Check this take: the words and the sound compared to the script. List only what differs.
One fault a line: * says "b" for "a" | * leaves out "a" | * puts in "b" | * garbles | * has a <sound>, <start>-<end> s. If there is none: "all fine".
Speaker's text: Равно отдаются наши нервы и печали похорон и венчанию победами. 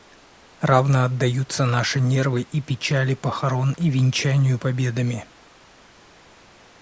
all fine